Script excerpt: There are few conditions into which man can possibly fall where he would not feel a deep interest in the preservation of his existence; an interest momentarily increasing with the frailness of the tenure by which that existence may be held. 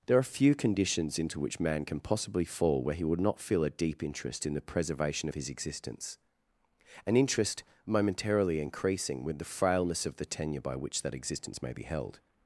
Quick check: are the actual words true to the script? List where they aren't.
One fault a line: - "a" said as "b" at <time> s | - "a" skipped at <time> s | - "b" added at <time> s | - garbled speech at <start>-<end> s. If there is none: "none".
none